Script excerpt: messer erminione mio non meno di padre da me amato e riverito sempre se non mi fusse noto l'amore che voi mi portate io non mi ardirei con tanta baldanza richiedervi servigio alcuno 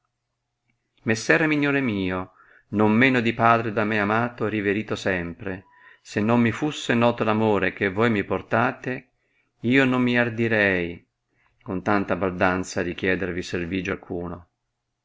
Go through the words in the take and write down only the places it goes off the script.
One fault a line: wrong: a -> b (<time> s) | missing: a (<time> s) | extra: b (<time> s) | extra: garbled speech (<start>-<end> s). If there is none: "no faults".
no faults